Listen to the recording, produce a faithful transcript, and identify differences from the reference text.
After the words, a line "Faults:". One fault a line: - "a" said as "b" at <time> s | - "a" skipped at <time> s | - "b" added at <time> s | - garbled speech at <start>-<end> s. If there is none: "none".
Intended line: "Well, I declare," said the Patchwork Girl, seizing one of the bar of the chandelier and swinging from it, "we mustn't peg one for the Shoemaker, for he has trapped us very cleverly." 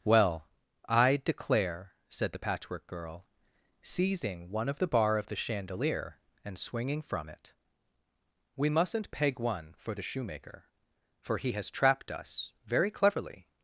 "Well, I declare," said the Patchwork Girl, seizing one of the bar of the chandelier and swinging from it, "we mustn't peg one for the Shoemaker, for he has trapped us very cleverly."
Faults:
none